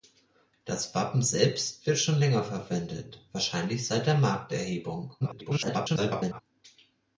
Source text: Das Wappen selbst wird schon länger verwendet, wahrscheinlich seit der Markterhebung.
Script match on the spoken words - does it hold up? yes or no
no